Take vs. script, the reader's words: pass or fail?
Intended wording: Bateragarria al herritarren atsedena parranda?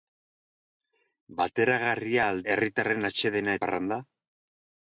pass